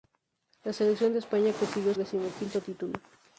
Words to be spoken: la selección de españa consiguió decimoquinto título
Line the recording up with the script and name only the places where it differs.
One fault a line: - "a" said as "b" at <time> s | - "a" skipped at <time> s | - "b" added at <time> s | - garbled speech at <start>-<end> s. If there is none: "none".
none